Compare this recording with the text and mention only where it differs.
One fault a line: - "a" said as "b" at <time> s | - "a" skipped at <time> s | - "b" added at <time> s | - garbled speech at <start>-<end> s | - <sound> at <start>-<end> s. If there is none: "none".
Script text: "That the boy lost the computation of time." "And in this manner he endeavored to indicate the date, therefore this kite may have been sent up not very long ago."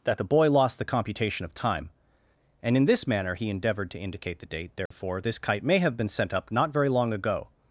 - dropout at 4.9-4.9 s